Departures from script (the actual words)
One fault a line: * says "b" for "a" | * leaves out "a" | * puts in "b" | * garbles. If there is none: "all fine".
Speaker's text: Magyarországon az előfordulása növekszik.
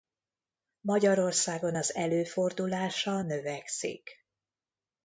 all fine